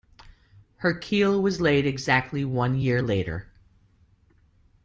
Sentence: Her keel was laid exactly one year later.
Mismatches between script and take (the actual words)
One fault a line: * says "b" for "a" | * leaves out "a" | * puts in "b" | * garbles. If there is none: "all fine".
all fine